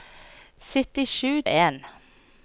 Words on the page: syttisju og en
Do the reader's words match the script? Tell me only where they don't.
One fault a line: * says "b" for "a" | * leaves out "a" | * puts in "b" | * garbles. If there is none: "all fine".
all fine